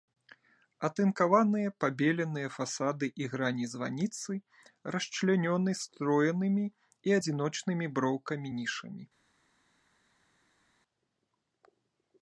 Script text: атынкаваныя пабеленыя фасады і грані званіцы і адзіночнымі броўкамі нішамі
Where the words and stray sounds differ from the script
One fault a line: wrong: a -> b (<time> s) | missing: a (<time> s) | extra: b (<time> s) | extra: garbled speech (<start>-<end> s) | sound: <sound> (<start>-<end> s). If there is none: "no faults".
extra: расчлянёны строенымі (5.0 s)